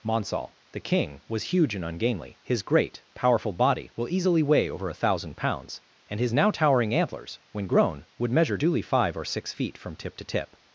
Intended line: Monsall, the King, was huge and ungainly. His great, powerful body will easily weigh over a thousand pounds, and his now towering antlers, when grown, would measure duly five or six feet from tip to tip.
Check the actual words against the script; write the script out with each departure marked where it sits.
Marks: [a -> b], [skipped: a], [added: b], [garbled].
Monsall, the King, was huge and ungainly. His great, powerful body will easily weigh over a thousand pounds, and his now towering antlers, when grown, would measure duly five or six feet from tip to tip.